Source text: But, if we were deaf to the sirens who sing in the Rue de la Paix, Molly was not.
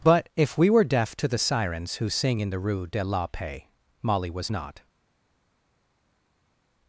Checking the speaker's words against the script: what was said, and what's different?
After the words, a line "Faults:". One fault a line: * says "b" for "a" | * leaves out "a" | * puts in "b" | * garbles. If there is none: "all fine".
But, if we were deaf to the sirens who sing in the Rue de la Paix, Molly was not.
Faults:
all fine